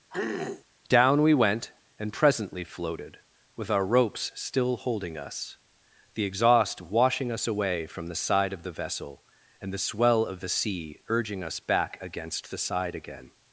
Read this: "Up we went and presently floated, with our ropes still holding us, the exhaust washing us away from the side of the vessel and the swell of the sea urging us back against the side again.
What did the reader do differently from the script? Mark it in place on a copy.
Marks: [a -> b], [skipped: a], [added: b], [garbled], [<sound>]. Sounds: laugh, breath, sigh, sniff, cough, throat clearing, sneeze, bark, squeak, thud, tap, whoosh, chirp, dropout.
[throat clearing] ["Up -> Down] we went and presently floated, with our ropes still holding us, the exhaust washing us away from the side of the vessel and the swell of the sea urging us back against the side again.